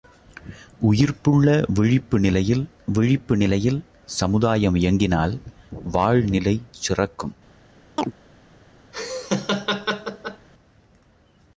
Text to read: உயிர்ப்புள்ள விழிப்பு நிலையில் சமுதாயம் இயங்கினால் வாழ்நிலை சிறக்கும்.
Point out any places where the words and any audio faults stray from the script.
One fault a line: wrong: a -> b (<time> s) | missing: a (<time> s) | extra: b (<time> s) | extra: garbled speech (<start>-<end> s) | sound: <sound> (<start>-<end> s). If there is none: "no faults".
extra: விழிப்பு நிலையில் (2.9 s)
sound: chirp (8.0-8.1 s)
sound: laugh (8.9-10.5 s)